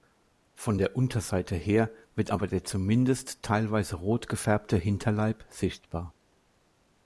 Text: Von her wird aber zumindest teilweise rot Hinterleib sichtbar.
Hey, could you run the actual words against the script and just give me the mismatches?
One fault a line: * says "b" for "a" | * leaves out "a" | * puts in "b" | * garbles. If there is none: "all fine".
* puts in "der Unterseite"
* puts in "der"
* puts in "gefärbte"